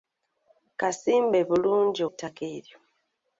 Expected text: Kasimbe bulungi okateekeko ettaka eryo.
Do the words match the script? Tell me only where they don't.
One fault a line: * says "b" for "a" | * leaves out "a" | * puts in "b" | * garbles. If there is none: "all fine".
* leaves out "okateekeko"